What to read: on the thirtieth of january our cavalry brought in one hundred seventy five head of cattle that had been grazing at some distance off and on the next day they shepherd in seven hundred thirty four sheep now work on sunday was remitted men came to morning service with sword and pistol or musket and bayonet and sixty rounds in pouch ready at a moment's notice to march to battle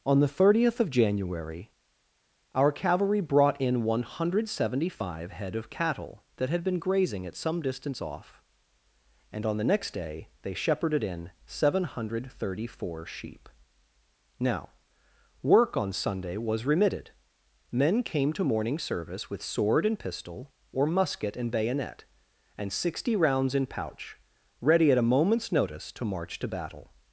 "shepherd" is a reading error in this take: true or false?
true